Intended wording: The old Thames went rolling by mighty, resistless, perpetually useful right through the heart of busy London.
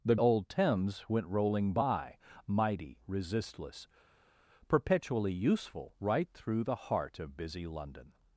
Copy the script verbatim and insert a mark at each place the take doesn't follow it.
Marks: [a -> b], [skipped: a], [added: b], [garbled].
The old Thames went rolling by mighty, resistless, perpetually useful right through the heart of busy London.